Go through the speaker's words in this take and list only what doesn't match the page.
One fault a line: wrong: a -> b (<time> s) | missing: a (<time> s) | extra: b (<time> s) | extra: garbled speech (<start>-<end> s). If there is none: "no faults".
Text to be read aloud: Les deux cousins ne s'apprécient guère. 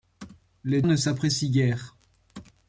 missing: deux cousins (0.8 s)